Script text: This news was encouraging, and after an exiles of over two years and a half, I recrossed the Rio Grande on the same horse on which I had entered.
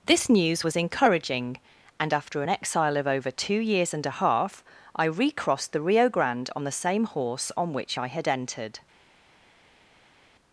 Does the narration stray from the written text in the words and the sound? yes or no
yes